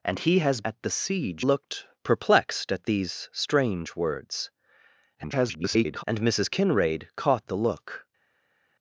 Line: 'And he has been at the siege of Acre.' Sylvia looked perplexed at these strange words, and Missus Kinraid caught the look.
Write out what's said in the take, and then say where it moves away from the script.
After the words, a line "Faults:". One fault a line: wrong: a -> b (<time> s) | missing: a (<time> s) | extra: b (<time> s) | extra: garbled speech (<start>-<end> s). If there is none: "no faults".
'And he has at the siege looked perplexed at these strange words, [garbled] and Missus Kinraid caught the look.
Faults:
missing: been (0.6 s)
missing: of Acre Sylvia (1.5 s)
extra: garbled speech (5.2-6.0 s)